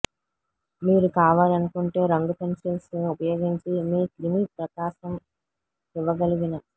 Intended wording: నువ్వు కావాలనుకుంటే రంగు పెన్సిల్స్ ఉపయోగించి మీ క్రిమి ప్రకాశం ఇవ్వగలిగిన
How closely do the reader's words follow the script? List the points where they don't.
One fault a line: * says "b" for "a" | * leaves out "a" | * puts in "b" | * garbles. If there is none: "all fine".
* says "మీరు" for "నువ్వు"